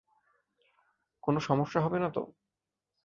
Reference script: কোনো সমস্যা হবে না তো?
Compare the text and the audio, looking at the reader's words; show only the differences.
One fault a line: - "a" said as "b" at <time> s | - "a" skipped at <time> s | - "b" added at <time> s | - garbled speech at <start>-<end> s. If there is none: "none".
none